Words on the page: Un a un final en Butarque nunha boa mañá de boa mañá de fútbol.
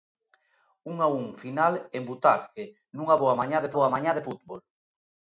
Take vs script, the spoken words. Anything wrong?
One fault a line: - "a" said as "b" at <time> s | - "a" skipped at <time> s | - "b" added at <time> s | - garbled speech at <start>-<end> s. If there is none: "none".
none